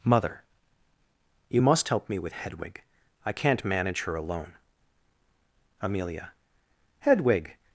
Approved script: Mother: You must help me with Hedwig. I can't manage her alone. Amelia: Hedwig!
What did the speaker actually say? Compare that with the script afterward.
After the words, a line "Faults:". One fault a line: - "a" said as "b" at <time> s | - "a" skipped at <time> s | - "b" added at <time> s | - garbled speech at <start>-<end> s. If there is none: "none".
Mother: You must help me with Hedwig. I can't manage her alone. Amelia: Hedwig!
Faults:
none